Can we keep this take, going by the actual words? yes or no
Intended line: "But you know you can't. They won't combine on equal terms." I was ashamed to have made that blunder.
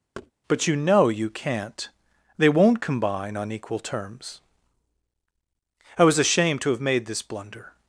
no